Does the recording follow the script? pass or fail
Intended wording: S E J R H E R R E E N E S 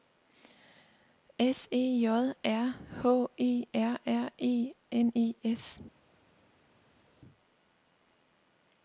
fail